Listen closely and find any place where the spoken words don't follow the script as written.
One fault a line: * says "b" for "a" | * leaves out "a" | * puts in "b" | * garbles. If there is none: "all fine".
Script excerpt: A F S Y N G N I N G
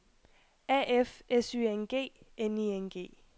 all fine